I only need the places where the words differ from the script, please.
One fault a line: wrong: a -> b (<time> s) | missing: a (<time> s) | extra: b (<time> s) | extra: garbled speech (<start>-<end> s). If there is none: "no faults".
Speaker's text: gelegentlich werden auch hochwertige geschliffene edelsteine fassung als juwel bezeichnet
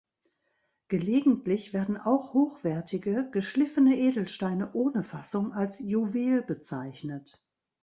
extra: ohne (4.7 s)